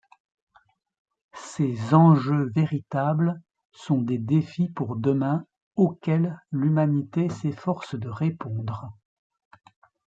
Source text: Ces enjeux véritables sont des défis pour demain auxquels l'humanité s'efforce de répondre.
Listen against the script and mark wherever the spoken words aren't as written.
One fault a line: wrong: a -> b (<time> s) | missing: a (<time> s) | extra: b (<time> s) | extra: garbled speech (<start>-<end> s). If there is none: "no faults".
no faults